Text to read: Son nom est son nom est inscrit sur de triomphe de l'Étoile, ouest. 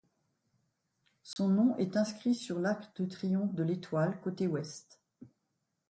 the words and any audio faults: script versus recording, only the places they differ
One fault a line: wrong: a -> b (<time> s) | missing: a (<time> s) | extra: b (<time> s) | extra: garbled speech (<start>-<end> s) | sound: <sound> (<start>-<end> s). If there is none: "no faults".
sound: dropout (1.3-1.4 s)
missing: son nom est (1.9 s)
extra: l'arc (2.6 s)
extra: côté (4.2 s)